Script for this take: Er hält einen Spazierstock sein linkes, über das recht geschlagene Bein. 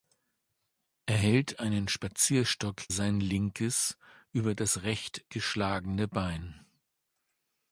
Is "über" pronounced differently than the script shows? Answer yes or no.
no